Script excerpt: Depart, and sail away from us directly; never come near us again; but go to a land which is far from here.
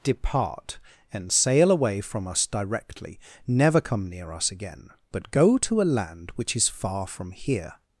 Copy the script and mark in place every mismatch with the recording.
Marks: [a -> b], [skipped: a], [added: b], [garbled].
Depart, and sail away from us directly; never come near us again; but go to a land which is far from here.